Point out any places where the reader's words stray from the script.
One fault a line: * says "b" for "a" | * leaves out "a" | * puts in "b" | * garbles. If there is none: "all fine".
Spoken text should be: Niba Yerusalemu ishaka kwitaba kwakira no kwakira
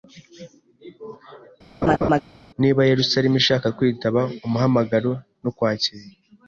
* says "umuhamagaro" for "kwakira"